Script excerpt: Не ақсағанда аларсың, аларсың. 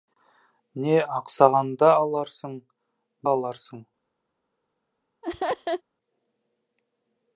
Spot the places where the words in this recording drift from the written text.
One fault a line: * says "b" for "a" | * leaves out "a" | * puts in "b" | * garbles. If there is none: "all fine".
all fine